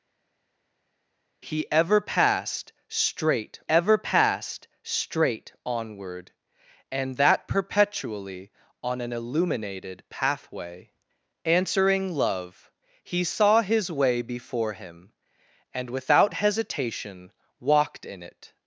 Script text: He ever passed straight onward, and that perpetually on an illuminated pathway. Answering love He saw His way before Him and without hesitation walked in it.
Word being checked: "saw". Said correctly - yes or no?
yes